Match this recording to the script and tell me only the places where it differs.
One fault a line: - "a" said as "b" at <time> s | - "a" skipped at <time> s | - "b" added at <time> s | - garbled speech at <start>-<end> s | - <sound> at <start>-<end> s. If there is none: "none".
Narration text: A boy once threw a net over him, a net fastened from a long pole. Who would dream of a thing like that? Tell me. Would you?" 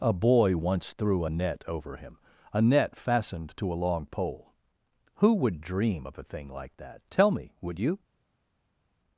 - "from" said as "to" at 3.6 s